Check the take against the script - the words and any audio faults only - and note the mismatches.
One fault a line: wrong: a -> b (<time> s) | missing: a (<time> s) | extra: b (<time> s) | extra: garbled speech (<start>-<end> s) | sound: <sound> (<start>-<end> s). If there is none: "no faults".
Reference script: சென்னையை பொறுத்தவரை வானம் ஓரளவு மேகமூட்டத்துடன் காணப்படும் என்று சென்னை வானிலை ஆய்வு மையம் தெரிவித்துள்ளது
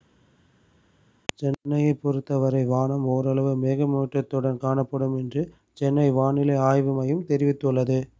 no faults